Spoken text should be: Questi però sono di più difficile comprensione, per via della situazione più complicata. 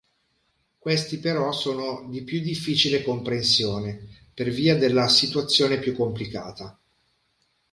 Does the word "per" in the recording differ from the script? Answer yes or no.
no